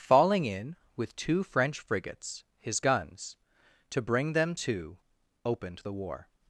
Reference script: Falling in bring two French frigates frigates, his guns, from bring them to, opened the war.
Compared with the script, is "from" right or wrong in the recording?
wrong